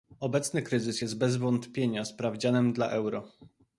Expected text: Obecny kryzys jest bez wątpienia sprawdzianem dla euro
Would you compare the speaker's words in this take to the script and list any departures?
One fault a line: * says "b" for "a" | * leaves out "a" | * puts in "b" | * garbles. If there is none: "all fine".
all fine